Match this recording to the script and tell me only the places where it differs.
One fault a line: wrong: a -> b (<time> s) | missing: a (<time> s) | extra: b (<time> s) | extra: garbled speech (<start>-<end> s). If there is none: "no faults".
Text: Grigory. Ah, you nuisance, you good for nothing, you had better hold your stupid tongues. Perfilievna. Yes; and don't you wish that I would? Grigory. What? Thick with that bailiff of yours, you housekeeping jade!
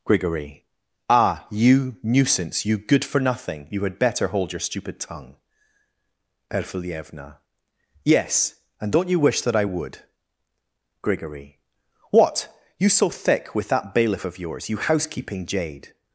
wrong: tongues -> tongue (5.0 s)
extra: You so (12.8 s)